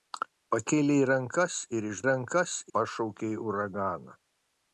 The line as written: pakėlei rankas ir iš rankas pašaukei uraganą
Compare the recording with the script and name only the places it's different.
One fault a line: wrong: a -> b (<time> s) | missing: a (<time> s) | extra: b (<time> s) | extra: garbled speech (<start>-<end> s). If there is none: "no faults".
no faults